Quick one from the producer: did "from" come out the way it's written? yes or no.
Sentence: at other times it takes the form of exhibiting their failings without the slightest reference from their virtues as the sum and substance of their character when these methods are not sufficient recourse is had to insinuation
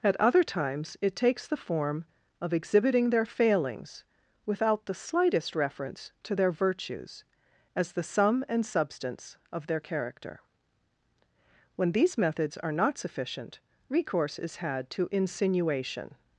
no